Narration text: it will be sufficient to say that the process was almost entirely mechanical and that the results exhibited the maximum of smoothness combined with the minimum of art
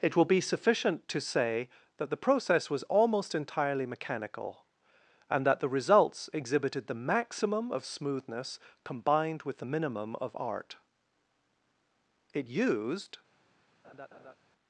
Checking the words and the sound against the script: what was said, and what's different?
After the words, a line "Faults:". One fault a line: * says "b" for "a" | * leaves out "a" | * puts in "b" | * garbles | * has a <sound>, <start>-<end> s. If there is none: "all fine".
it will be sufficient to say that the process was almost entirely mechanical and that the results exhibited the maximum of smoothness combined with the minimum of art it used
Faults:
* puts in "it used"
* has a laugh, 13.8-14.3 s